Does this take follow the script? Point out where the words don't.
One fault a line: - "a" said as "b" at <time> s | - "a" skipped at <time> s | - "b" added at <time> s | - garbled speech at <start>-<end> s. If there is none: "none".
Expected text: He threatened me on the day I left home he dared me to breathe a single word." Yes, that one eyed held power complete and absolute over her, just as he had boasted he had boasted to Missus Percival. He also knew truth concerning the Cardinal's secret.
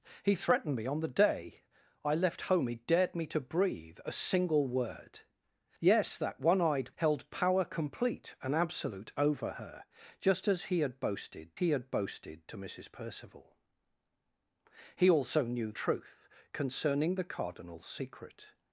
none